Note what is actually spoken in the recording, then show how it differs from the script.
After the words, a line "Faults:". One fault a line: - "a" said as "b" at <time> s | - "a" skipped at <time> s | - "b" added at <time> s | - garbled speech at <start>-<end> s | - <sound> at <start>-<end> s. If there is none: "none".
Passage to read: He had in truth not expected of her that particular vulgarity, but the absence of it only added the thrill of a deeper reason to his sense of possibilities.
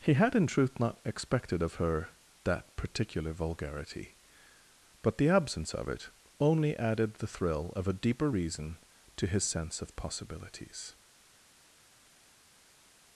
He had in truth not expected of her that particular vulgarity, but the absence of it only added the thrill of a deeper reason to his sense of possibilities.
Faults:
none